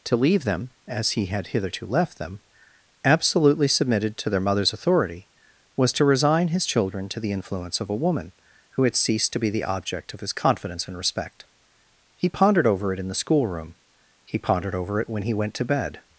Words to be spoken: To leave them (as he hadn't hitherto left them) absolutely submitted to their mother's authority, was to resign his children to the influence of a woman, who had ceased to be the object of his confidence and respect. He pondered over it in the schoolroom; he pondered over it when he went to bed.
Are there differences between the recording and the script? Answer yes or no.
yes